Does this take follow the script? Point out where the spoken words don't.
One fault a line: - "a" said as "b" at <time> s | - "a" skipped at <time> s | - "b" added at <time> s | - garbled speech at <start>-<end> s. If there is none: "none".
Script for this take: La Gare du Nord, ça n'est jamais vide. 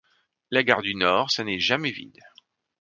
none